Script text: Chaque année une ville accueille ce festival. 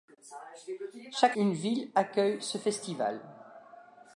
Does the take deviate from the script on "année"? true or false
true